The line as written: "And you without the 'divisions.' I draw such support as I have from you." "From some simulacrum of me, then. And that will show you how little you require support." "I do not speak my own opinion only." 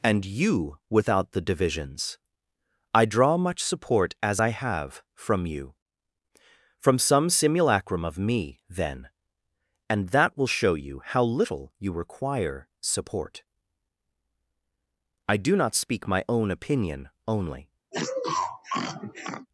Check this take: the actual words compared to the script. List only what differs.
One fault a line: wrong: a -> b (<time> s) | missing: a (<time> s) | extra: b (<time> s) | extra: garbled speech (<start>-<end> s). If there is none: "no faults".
wrong: such -> much (3.4 s)